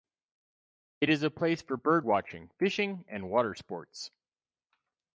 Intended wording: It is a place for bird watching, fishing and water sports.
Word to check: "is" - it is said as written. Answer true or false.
true